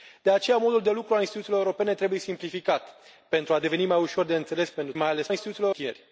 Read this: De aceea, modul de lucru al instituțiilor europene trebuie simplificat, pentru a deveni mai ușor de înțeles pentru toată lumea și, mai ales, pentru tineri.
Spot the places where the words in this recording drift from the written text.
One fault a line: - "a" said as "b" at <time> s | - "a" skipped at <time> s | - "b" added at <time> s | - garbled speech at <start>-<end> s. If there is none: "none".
- "toată lumea și" skipped at 4.9 s
- "pentru" said as "instituțiilor" at 5.3 s